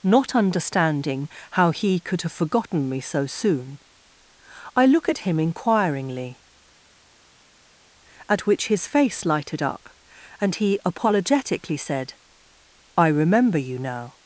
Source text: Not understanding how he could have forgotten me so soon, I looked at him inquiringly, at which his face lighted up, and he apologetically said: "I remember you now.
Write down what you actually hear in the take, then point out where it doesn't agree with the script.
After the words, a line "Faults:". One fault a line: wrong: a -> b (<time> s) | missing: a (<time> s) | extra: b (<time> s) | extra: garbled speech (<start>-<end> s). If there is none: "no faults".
Not understanding how he could have forgotten me so soon, I look at him inquiringly, at which his face lighted up, and he apologetically said: "I remember you now.
Faults:
wrong: looked -> look (4.8 s)